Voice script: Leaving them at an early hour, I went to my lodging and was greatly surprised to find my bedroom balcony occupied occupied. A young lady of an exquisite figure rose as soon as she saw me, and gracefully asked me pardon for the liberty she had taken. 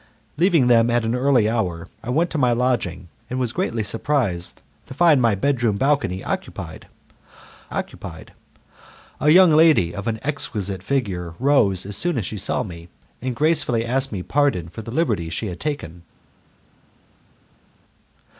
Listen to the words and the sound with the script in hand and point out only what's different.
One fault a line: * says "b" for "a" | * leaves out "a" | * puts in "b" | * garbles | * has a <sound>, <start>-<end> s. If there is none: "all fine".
all fine